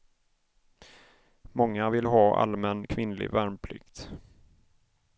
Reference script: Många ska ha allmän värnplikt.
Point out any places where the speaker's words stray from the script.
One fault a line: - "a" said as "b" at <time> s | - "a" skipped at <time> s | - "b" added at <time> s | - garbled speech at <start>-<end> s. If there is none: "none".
- "ska" said as "vill" at 1.9 s
- "kvinnlig" added at 2.8 s